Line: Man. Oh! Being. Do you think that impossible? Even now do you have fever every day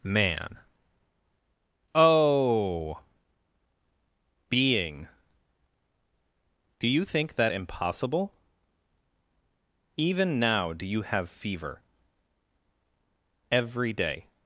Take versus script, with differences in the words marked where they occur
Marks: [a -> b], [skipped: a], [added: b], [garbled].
Man. Oh! Being. Do you think that impossible? Even now do you have fever every day